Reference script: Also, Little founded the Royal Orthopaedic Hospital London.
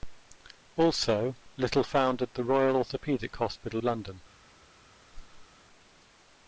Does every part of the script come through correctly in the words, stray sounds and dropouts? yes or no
no